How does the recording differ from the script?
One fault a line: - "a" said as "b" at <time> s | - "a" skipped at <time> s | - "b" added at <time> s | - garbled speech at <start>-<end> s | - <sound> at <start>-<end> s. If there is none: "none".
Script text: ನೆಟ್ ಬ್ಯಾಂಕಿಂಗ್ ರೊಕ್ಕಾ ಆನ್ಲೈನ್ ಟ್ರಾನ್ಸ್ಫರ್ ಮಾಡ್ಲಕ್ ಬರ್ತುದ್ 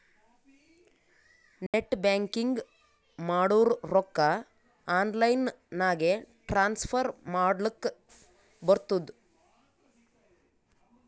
- dropout at 1.7-1.7 s
- "ಮಾಡುರ್" added at 3.2 s
- "ನಾಗೆ" added at 5.8 s